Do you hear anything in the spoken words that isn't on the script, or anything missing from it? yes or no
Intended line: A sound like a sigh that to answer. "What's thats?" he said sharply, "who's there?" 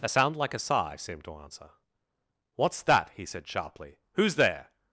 yes